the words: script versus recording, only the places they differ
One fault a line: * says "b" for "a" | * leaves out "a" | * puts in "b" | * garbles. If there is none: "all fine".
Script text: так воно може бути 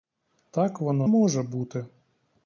all fine